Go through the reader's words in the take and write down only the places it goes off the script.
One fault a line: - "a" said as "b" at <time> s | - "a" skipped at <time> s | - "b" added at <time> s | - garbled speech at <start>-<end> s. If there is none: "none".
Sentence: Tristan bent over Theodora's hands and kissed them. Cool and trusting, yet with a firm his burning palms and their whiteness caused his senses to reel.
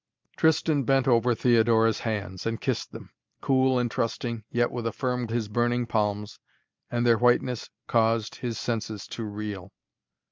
none